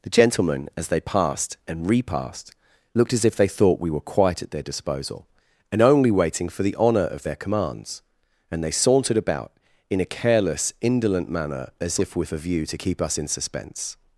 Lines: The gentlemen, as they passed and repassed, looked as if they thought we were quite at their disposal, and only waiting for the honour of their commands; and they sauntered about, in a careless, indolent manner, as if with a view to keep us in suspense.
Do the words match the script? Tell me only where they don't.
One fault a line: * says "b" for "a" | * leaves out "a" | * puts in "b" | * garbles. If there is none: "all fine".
all fine